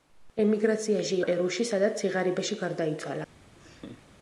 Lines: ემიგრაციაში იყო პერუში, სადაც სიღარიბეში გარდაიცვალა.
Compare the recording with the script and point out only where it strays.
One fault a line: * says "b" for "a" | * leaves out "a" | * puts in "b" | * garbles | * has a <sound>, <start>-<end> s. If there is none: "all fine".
* leaves out "იყო"
* has a laugh, 3.6-4.1 s